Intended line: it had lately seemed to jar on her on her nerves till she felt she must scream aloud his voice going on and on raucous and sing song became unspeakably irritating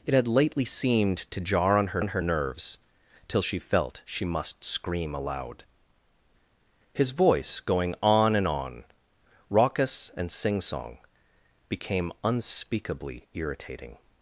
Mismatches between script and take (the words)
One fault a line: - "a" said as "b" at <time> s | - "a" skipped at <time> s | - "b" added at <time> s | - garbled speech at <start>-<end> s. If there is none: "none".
none